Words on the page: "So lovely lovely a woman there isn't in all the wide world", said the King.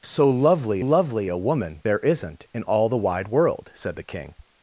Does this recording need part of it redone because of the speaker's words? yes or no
no